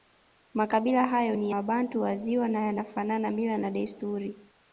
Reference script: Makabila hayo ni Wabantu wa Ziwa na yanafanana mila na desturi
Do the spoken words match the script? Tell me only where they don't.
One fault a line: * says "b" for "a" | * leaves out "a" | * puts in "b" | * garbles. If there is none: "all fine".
all fine